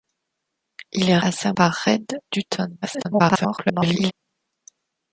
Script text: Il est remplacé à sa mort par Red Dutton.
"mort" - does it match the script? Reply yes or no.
no